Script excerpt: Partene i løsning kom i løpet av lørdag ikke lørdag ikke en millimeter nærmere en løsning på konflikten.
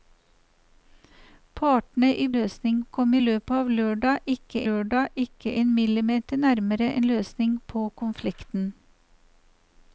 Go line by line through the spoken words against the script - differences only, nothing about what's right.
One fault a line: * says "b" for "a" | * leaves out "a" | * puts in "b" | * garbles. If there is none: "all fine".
all fine